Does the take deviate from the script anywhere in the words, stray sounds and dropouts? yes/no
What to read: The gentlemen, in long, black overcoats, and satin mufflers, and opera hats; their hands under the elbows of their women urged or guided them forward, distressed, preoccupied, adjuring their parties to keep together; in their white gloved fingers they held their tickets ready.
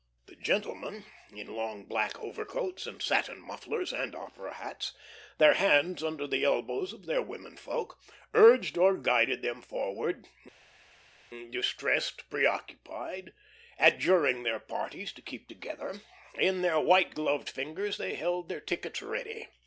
yes